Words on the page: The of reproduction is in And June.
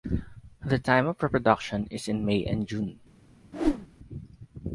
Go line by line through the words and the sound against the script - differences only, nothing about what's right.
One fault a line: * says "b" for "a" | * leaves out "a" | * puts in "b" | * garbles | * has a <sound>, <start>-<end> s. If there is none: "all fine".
* puts in "time"
* puts in "May"
* has a whoosh, 3.5-3.9 s